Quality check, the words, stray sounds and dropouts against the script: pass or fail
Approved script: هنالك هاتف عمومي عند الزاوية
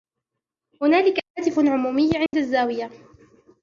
fail